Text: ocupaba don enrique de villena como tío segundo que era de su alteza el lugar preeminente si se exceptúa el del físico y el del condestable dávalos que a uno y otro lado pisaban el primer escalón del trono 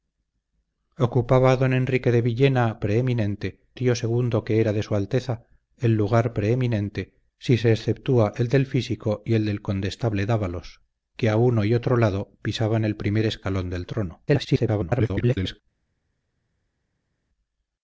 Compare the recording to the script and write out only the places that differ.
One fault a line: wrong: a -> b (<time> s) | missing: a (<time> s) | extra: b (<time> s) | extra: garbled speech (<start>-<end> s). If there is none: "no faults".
wrong: como -> preeminente (2.8 s)
extra: garbled speech (14.3-15.6 s)